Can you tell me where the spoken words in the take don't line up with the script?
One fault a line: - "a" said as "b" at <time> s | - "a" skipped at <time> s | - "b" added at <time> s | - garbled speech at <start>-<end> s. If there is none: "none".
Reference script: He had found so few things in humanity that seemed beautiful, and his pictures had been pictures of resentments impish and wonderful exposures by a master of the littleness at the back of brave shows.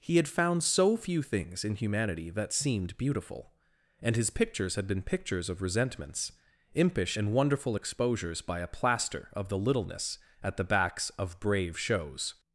- "master" said as "plaster" at 8.7 s
- "back" said as "backs" at 10.6 s